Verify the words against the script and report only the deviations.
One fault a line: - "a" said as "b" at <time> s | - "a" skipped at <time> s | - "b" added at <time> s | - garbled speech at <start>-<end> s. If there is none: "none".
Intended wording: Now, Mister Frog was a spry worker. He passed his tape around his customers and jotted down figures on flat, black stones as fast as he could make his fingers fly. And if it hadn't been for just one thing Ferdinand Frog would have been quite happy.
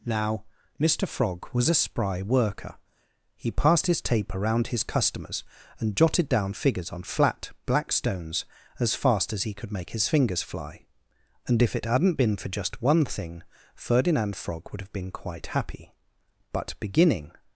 - "But beginning" added at 16.5 s